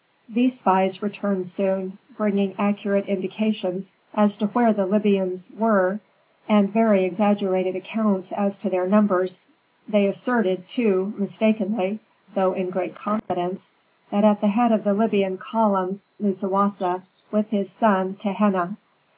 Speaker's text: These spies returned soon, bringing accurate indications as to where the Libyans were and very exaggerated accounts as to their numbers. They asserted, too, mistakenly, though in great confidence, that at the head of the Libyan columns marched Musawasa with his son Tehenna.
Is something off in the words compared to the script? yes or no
yes